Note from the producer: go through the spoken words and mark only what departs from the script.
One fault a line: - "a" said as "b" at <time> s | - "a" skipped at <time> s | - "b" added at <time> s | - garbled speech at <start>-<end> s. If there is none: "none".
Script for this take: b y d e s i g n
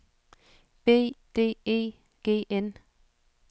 - "y" skipped at 1.1 s
- "s i" skipped at 1.9 s